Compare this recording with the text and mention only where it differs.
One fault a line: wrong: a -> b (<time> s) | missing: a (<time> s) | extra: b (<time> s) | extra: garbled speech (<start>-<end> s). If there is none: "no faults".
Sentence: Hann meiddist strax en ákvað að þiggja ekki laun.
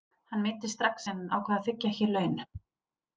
no faults